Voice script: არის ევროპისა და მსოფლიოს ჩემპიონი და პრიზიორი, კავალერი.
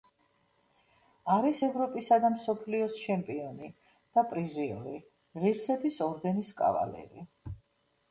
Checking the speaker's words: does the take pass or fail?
fail